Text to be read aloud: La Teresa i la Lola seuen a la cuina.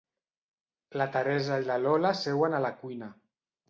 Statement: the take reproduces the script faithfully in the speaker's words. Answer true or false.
true